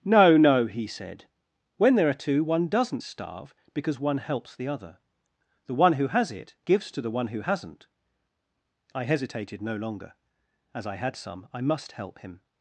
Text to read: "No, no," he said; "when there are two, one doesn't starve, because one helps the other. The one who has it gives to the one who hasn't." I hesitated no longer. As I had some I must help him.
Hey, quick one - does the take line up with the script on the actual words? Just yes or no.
yes